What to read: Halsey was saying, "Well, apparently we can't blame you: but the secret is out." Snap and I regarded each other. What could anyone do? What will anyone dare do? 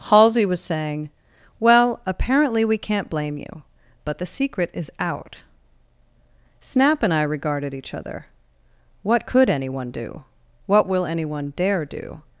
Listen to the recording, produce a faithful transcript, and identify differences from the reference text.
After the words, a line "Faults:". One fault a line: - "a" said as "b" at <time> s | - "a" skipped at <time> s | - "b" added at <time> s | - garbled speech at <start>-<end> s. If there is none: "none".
Halsey was saying, "Well, apparently we can't blame you: but the secret is out." Snap and I regarded each other. What could anyone do? What will anyone dare do?
Faults:
none